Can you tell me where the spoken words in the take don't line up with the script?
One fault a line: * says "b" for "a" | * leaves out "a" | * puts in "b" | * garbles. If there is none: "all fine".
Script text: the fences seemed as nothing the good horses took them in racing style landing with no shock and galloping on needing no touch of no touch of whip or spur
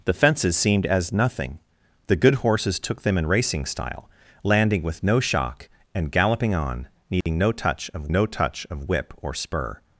all fine